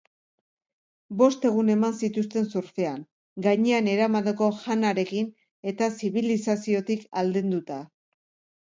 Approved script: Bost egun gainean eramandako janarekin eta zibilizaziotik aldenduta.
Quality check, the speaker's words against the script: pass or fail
fail